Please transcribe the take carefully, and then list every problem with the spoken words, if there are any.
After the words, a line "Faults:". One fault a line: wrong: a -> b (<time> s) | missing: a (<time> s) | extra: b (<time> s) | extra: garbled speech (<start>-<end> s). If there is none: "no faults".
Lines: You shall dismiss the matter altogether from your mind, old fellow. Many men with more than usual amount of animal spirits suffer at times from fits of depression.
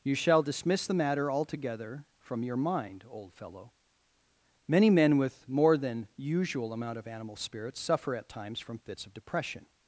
You shall dismiss the matter altogether from your mind, old fellow. Many men with more than usual amount of animal spirits suffer at times from fits of depression.
Faults:
no faults